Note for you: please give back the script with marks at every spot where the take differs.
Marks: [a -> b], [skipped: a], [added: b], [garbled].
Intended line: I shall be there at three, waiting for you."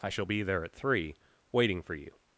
I shall be there at three, waiting for you."